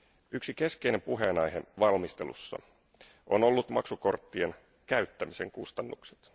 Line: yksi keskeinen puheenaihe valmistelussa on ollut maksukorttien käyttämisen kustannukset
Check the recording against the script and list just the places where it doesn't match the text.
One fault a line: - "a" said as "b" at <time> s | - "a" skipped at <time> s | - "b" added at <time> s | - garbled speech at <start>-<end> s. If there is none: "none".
none